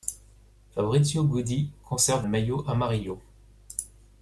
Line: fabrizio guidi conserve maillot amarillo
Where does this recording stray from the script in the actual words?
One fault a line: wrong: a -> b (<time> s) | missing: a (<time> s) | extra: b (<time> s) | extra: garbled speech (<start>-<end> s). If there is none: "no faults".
no faults